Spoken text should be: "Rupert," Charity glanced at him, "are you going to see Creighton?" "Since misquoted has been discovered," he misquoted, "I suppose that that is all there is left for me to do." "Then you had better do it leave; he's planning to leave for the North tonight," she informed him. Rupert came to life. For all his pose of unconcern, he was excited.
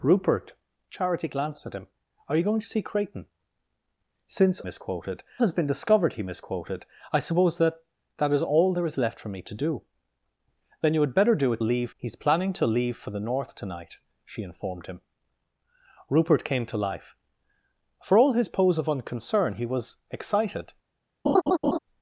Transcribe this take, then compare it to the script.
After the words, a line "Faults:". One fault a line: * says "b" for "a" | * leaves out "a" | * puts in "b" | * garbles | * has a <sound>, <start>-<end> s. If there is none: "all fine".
"Rupert," Charity glanced at him, "are you going to see Creighton?" "Since misquoted has been discovered," he misquoted, "I suppose that that is all there is left for me to do." "Then you had better do it leave; he's planning to leave for the North tonight," she informed him. Rupert came to life. For all his pose of unconcern, he was excited.
Faults:
* has a laugh, 21.3-21.8 s